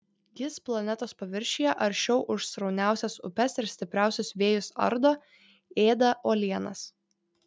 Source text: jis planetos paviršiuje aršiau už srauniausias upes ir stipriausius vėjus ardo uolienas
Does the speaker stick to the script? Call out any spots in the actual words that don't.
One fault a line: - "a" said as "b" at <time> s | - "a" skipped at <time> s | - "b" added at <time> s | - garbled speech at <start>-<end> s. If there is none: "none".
- "ėda" added at 5.9 s